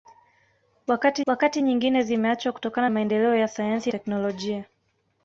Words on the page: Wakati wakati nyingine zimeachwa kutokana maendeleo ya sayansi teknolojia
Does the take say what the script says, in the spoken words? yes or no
yes